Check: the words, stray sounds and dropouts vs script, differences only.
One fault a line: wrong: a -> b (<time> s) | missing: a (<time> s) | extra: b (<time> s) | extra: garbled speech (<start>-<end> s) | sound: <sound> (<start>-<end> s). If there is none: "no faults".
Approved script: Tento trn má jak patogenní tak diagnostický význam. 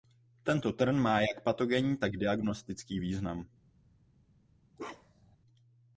sound: bark (4.8-5.4 s)